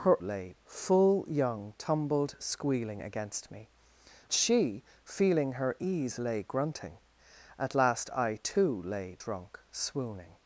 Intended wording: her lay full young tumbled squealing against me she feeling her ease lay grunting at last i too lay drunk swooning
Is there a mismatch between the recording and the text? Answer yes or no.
no